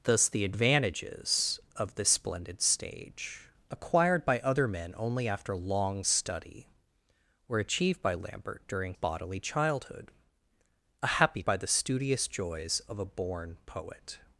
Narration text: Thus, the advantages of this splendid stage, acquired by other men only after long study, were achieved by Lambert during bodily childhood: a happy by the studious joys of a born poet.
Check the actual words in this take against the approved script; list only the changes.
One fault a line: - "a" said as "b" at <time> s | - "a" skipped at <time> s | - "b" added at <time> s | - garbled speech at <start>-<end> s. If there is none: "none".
none